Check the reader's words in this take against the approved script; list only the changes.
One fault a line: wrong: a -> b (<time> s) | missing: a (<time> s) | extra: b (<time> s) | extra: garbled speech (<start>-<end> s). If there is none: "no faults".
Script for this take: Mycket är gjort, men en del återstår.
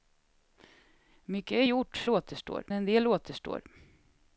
wrong: men -> återstår (2.1 s)